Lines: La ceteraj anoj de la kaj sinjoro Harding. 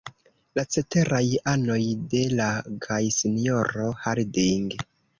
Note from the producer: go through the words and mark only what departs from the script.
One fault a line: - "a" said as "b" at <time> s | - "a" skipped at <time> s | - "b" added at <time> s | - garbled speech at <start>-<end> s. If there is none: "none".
none